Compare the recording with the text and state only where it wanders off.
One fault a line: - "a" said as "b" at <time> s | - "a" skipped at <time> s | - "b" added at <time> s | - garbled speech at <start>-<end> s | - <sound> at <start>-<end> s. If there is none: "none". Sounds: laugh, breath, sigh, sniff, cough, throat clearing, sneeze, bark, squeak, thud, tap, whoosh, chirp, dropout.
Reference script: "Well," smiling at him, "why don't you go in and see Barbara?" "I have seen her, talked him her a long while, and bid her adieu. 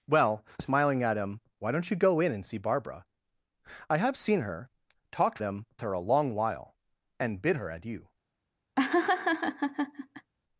- laugh at 8.8-10.3 s